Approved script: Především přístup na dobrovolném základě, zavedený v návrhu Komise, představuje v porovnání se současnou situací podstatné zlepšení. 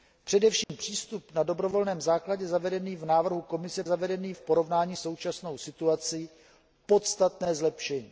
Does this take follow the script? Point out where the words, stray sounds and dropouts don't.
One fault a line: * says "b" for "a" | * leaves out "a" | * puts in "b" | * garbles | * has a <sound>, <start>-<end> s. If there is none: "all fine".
* has a dropout, 0.6-0.7 s
* says "zavedený" for "představuje"
* leaves out "se"